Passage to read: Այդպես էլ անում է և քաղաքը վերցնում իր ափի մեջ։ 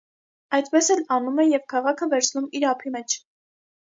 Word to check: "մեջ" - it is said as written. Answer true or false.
true